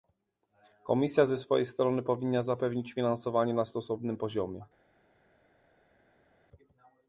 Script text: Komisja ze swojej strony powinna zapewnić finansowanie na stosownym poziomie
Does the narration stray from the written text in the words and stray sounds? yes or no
no